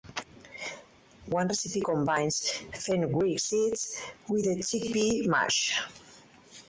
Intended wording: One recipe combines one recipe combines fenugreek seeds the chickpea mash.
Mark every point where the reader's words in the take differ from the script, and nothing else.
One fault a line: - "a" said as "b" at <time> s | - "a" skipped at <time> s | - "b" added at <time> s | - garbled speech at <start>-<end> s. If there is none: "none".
- "one recipe combines" skipped at 2.5 s
- "with" added at 4.3 s